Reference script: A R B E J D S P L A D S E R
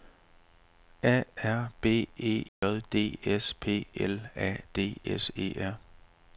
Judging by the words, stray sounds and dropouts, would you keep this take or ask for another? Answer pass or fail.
fail